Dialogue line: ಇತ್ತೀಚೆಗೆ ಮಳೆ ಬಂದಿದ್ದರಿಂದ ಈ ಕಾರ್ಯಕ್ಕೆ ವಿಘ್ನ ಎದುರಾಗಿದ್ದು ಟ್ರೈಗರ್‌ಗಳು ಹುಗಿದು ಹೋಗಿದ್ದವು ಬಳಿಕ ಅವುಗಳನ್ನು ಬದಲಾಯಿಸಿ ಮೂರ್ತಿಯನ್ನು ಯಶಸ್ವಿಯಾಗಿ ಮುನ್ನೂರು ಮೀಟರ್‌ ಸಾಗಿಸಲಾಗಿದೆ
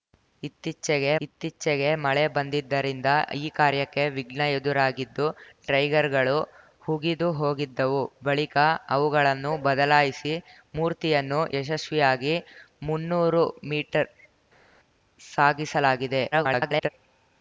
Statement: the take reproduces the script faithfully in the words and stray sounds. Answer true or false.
false